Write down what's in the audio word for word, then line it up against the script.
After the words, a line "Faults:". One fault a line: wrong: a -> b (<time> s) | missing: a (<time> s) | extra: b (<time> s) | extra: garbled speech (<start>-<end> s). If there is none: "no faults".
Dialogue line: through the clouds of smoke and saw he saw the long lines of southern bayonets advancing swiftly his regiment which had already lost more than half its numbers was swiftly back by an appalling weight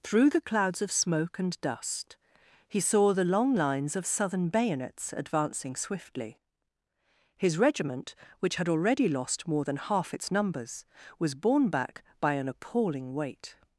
through the clouds of smoke and dust he saw the long lines of southern bayonets advancing swiftly his regiment which had already lost more than half its numbers was borne back by an appalling weight
Faults:
wrong: saw -> dust (1.6 s)
wrong: swiftly -> borne (11.3 s)